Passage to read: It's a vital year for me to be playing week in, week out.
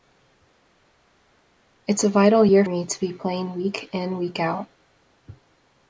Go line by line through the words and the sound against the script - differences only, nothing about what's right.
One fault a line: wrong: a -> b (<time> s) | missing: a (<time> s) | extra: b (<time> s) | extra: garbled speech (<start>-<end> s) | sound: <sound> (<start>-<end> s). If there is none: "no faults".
missing: for (2.6 s)